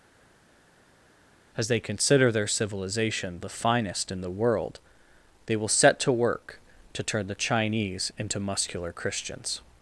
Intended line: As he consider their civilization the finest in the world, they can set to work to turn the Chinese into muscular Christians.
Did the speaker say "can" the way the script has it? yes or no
no